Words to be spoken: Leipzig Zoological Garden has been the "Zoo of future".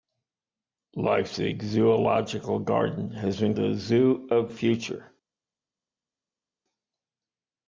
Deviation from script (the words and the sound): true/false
false